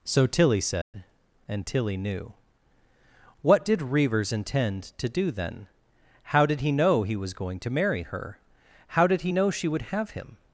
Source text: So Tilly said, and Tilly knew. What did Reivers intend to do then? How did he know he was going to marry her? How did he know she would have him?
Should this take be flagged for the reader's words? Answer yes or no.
no